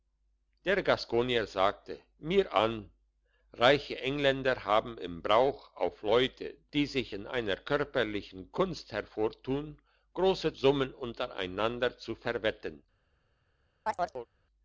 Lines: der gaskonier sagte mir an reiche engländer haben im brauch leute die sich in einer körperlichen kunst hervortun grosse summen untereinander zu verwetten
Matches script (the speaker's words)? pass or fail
fail